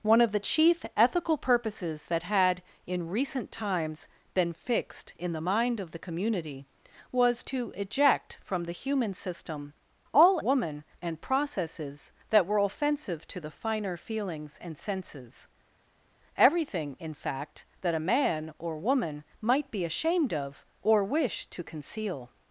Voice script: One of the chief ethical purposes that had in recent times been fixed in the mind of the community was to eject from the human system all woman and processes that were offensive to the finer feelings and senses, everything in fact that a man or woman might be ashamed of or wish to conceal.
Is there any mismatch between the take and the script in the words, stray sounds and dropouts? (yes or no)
no